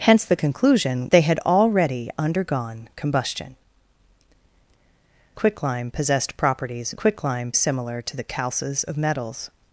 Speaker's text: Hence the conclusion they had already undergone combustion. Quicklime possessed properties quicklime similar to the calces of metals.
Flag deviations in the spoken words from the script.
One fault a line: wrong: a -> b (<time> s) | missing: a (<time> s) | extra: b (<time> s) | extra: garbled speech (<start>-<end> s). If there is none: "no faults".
no faults